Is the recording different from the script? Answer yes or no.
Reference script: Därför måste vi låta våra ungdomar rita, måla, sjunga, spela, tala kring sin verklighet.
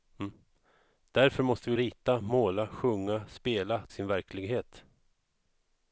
yes